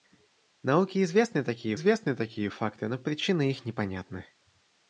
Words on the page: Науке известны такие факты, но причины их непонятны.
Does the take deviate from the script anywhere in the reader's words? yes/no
yes